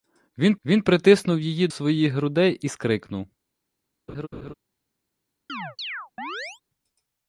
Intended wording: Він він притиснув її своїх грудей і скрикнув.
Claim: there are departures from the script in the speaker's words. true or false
false